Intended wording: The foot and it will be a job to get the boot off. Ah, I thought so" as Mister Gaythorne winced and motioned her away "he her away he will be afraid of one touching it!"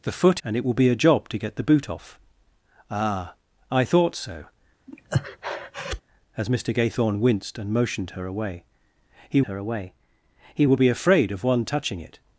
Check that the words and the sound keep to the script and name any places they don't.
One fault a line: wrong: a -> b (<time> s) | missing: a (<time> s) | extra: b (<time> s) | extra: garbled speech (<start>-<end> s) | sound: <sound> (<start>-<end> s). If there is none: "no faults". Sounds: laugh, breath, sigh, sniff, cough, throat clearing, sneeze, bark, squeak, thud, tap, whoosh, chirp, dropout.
sound: breath (4.9-6.0 s)